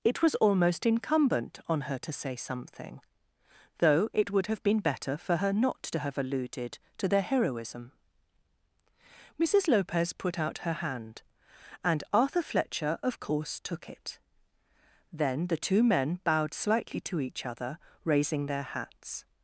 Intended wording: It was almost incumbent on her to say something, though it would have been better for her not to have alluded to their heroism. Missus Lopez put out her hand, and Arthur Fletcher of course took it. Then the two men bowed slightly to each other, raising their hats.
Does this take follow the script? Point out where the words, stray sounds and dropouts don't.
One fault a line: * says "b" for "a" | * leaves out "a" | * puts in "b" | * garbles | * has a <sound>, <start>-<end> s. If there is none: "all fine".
all fine